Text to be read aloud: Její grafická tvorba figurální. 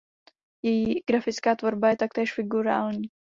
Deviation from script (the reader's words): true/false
true